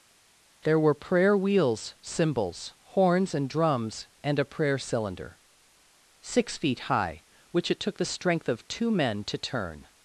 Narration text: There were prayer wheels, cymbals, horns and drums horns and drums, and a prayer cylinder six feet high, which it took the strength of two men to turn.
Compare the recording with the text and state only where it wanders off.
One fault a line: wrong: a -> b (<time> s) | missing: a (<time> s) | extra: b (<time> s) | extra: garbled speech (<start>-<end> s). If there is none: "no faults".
missing: horns and drums (4.1 s)